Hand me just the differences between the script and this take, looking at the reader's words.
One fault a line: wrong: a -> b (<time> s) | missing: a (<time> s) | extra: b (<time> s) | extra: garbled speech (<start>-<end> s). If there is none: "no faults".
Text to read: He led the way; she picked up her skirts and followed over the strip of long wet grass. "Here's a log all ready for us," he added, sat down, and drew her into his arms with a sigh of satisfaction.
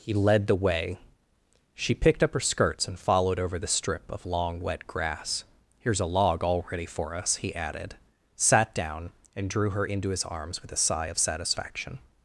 no faults